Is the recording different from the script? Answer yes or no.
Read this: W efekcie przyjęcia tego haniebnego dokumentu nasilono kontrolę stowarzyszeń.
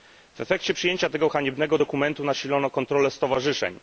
no